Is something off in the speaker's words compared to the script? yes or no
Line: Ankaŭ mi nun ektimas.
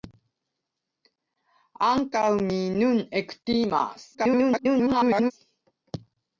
yes